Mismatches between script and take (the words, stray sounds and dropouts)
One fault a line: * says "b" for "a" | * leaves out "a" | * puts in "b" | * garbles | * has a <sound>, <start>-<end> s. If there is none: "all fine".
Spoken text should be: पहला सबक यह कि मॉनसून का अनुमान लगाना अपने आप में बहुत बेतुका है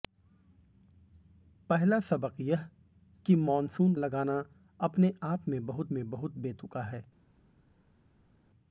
* leaves out "का अनुमान"
* puts in "में बहुत"